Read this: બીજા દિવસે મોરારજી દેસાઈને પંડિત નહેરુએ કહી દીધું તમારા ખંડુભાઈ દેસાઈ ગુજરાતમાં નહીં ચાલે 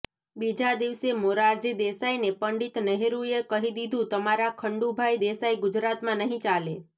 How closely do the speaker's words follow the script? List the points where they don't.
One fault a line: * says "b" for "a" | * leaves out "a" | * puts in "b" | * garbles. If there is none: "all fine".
all fine